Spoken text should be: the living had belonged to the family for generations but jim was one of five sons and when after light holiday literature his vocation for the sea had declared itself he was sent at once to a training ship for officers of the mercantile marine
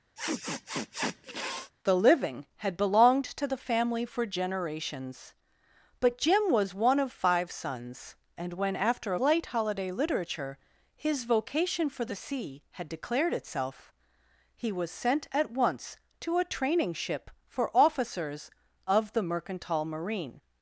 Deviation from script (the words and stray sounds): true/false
true